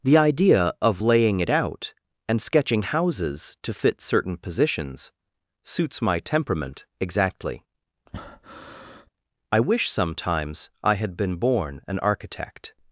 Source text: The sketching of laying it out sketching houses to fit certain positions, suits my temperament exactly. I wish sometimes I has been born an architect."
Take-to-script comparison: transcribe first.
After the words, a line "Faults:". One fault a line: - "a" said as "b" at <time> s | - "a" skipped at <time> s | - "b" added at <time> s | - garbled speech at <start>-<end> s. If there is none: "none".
The idea of laying it out and sketching houses to fit certain positions, suits my temperament exactly. I wish sometimes I had been born an architect."
Faults:
- "sketching" said as "idea" at 0.2 s
- "and" added at 2.3 s
- "has" said as "had" at 11.0 s